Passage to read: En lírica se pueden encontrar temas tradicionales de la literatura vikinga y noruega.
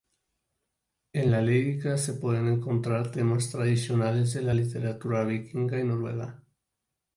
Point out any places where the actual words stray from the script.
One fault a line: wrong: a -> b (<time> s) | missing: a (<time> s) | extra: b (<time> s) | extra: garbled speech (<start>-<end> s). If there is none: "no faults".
extra: la (1.3 s)